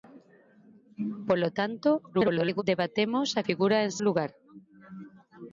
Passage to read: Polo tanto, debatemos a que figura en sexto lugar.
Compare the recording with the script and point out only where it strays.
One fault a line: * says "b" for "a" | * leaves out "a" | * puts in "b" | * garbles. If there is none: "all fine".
* garbles
* leaves out "que"
* leaves out "sexto"